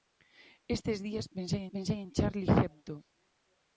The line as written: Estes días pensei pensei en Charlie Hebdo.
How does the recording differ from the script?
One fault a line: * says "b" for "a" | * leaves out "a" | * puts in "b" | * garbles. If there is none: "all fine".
all fine